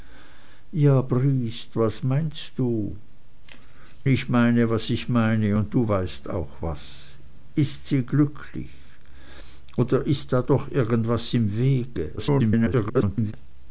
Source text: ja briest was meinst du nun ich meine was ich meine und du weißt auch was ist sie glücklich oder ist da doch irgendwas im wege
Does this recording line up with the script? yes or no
no